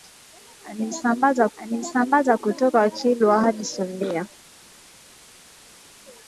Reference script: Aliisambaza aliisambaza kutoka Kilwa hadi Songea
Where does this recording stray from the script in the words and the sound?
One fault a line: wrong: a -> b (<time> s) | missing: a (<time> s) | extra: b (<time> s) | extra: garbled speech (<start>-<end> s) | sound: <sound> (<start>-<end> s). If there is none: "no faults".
no faults